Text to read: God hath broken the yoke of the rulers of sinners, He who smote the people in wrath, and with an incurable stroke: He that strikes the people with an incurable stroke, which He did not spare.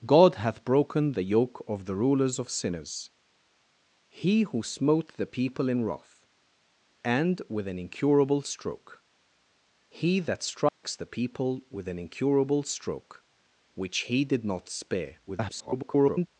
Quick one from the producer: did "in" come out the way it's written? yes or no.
yes